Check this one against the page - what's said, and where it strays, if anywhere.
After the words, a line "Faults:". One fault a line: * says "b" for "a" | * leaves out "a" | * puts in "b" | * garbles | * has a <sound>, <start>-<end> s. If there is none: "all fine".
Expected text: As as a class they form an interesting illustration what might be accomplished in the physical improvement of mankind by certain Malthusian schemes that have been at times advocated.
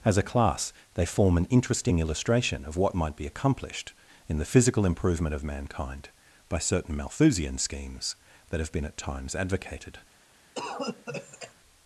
As a class they form an interesting illustration of what might be accomplished in the physical improvement of mankind by certain Malthusian schemes that have been at times advocated.
Faults:
* leaves out "as"
* puts in "of"
* has a cough, 10.6-11.5 s